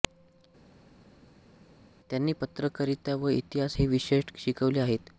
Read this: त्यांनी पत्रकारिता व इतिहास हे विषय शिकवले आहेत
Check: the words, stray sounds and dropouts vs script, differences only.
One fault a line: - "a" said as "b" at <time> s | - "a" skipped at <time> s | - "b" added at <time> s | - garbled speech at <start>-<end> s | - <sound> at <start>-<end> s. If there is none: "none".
none